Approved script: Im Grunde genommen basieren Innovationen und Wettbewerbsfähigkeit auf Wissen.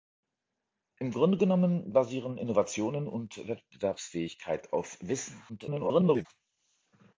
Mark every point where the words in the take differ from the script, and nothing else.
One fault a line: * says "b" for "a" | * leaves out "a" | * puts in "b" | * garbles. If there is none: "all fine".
* garbles